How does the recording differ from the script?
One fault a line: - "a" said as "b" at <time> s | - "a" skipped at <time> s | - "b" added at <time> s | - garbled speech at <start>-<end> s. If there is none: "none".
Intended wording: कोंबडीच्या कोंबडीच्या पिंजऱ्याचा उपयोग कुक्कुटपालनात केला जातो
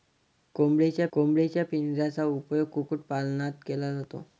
none